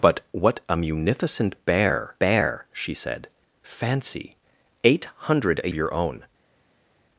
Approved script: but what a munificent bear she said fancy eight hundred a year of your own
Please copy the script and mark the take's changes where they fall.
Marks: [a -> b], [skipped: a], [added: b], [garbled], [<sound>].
but what a munificent bear [added: bear] she said fancy eight hundred a [skipped: year of] your own